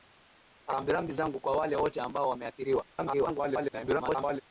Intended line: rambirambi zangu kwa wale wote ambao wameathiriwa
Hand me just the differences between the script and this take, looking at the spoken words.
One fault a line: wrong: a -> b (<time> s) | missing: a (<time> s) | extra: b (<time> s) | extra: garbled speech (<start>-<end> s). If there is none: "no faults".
extra: garbled speech (2.9-4.4 s)